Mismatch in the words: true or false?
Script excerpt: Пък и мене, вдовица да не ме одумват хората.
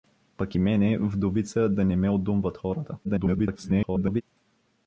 true